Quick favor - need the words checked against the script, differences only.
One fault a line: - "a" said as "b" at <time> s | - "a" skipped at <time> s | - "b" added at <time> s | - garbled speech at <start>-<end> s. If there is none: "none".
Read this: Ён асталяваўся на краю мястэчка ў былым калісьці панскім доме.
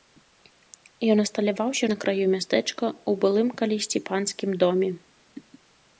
none